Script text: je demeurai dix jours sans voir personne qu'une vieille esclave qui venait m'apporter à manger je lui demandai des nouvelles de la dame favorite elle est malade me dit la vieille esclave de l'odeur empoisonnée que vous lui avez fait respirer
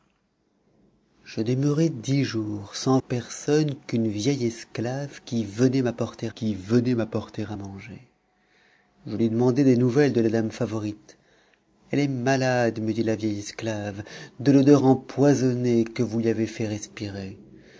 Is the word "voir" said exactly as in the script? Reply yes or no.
no